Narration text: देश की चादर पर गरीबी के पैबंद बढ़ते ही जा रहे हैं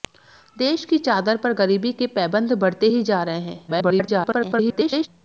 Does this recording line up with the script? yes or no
no